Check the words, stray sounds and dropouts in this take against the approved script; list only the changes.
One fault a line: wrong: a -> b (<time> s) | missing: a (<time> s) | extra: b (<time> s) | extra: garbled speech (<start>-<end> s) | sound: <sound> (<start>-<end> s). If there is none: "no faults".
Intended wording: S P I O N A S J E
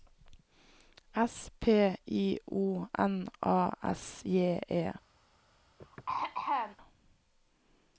sound: throat clearing (5.8-6.8 s)